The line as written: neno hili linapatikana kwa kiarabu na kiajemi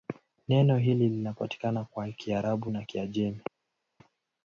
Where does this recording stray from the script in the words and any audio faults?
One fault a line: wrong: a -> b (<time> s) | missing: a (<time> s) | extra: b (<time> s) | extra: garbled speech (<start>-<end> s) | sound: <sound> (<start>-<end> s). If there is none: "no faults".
no faults